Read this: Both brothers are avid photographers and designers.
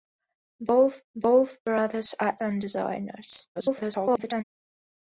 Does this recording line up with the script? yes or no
no